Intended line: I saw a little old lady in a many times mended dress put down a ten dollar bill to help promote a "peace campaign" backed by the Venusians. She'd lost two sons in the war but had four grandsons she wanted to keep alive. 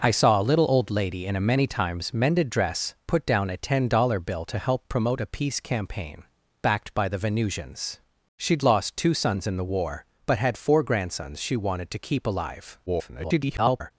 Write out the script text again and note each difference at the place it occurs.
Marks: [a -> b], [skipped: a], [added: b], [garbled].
I saw a little old lady in a many times mended dress put down a ten dollar bill to help promote a "peace campaign" backed by the Venusians. She'd lost two sons in the war but had four grandsons she wanted to keep alive. [garbled]